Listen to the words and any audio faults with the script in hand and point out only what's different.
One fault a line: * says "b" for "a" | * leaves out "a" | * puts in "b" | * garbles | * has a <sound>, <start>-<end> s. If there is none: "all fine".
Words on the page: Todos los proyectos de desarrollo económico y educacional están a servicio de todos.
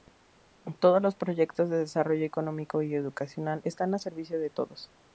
all fine